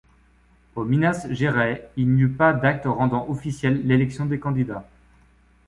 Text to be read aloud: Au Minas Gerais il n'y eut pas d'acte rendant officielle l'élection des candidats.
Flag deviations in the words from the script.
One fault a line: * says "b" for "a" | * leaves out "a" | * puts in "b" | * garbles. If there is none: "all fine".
all fine